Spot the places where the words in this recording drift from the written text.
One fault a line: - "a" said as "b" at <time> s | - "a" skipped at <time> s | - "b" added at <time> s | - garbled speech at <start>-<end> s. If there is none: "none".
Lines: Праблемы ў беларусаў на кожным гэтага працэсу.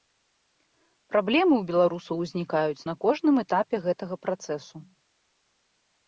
- "узнікаюць" added at 2.2 s
- "этапе" added at 3.4 s